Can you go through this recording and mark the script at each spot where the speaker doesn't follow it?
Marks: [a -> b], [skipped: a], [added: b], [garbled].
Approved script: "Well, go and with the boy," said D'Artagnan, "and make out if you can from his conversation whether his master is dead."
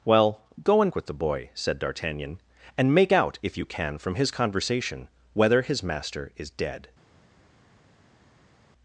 "Well, go and with the boy," said D'Artagnan, "and make out if you can from his conversation whether his master is dead."